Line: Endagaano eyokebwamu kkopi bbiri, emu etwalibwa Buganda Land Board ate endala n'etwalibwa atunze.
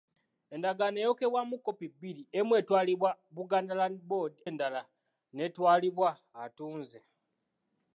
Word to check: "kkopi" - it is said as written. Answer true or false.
true